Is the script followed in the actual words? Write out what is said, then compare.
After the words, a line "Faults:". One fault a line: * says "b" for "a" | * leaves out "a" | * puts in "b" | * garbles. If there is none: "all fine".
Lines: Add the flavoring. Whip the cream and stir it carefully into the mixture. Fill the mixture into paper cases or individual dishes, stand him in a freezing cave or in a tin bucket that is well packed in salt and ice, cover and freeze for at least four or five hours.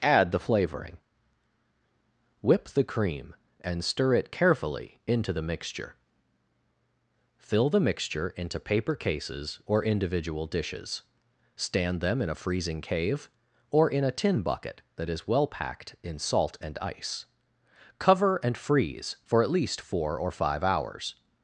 Add the flavoring. Whip the cream and stir it carefully into the mixture. Fill the mixture into paper cases or individual dishes, stand them in a freezing cave or in a tin bucket that is well packed in salt and ice, cover and freeze for at least four or five hours.
Faults:
* says "them" for "him"